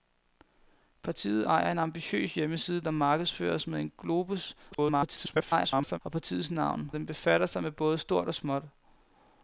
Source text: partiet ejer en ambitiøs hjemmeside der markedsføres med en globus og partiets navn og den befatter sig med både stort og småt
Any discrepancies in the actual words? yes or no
yes